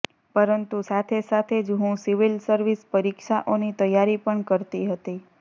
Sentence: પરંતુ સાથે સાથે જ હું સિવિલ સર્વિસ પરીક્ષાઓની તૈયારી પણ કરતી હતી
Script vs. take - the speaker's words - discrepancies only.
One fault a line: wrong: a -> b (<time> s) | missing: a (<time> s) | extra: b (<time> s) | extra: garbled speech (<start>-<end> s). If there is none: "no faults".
no faults